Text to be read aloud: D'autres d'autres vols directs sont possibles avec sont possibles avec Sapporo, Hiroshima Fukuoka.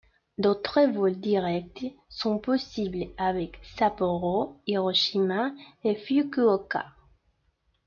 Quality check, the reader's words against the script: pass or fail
fail